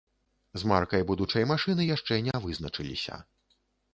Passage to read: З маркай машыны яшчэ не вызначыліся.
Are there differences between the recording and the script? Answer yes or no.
yes